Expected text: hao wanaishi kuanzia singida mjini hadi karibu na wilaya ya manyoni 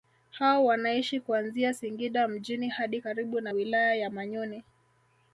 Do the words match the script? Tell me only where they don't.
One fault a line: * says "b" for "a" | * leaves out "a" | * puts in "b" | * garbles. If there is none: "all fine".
all fine